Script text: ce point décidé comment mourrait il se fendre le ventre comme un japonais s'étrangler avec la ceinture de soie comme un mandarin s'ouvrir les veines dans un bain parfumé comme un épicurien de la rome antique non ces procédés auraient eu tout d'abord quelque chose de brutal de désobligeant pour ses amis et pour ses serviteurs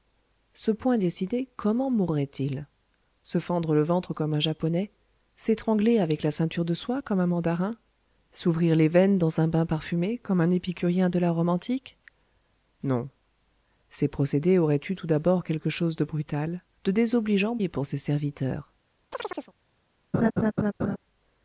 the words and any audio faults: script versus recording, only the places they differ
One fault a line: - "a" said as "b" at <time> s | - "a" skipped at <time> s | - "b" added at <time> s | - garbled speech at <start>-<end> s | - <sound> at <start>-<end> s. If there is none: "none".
- "pour ses amis" skipped at 17.6 s
- chirp at 19.1-19.5 s
- laugh at 20.1-21.0 s